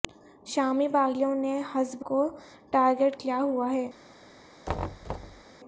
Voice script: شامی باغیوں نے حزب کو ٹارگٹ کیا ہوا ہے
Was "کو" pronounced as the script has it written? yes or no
yes